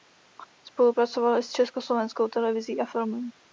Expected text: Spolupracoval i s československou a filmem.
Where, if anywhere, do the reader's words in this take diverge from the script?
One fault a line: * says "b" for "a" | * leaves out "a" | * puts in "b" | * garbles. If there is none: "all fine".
* puts in "televizí"